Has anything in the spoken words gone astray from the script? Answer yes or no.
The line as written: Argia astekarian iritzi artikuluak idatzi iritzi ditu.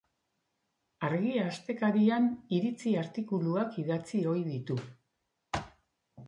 yes